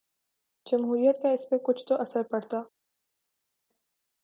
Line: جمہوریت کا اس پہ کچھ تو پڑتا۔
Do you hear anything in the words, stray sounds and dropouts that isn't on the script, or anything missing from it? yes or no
yes